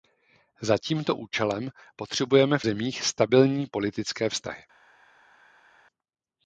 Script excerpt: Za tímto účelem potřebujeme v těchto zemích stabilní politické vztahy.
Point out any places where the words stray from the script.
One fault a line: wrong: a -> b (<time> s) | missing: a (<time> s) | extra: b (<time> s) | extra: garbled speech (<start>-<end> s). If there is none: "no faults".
missing: těchto (2.6 s)